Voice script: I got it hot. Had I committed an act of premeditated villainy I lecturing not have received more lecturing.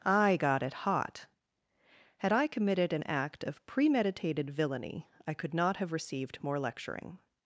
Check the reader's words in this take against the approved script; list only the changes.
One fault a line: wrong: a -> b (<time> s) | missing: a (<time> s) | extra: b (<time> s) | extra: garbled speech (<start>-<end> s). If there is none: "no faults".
wrong: lecturing -> could (5.3 s)